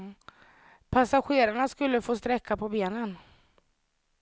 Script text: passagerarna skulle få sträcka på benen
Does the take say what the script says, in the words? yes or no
yes